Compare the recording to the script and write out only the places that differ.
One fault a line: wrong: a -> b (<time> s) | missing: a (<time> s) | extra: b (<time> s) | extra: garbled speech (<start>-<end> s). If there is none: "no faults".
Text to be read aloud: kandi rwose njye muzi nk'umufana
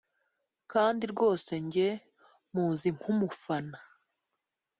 no faults